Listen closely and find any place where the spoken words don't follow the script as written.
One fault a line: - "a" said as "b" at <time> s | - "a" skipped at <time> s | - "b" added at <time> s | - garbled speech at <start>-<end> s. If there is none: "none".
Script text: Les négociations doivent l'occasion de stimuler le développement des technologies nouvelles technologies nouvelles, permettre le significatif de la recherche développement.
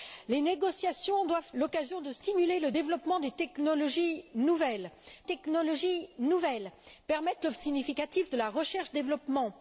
none